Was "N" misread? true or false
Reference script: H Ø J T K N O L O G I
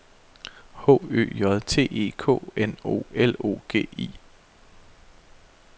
false